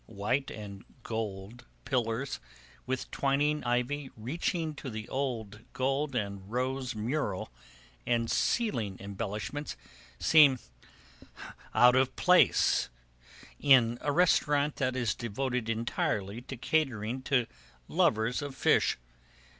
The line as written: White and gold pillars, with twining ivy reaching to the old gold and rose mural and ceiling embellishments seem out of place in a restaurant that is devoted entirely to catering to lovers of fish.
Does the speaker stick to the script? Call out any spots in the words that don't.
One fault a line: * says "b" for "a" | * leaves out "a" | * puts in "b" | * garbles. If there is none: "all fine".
all fine